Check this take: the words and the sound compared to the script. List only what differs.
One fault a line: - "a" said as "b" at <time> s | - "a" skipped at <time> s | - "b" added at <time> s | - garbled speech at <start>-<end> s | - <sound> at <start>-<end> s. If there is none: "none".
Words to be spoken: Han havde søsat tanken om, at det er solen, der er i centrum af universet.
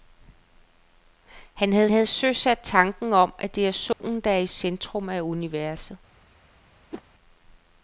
- "havde" added at 1.9 s
- dropout at 3.9-4.0 s
- whoosh at 6.9-7.0 s